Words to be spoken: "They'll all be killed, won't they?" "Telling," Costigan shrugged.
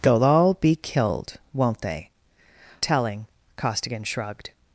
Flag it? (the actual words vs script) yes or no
no